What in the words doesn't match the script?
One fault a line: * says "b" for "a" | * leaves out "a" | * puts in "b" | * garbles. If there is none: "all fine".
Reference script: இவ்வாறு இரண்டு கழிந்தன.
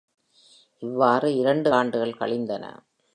* puts in "ஆண்டுகள்"